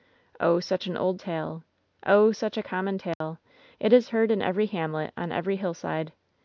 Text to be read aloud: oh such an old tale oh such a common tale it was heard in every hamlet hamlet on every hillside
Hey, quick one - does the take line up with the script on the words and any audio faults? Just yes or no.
no